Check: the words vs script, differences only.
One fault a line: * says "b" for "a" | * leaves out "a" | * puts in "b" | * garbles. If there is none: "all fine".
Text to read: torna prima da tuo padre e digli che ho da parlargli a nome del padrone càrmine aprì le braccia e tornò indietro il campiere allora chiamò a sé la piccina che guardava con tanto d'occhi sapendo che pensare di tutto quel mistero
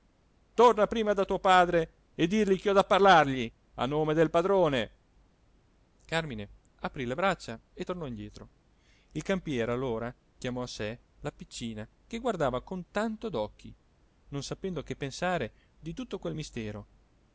* puts in "non"